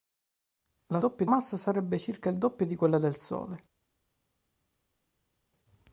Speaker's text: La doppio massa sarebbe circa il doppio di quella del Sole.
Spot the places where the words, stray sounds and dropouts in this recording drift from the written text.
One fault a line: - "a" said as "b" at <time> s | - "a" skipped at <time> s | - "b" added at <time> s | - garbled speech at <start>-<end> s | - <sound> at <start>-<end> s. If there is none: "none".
none